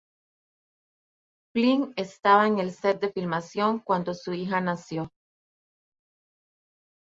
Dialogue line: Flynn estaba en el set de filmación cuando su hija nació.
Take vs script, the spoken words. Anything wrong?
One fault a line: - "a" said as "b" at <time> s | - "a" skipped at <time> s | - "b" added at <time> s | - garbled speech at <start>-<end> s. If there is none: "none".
none